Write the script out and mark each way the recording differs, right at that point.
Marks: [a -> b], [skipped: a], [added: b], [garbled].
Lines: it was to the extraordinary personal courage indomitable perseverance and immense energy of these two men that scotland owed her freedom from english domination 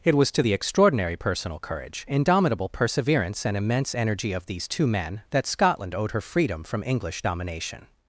it was to the extraordinary personal courage indomitable perseverance and immense energy of these two men that scotland owed her freedom from english domination